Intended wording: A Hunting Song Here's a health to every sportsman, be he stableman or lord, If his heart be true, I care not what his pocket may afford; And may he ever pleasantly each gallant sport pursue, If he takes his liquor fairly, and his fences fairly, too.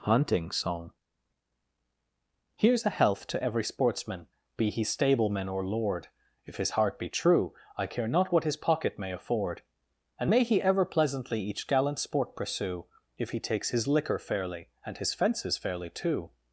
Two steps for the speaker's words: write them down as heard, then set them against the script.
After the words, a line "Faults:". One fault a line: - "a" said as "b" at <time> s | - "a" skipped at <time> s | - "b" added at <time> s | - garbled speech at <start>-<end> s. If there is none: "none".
Hunting Song Here's a health to every sportsman, be he stableman or lord, If his heart be true, I care not what his pocket may afford; And may he ever pleasantly each gallant sport pursue, If he takes his liquor fairly, and his fences fairly, too.
Faults:
- "A" skipped at 0.1 s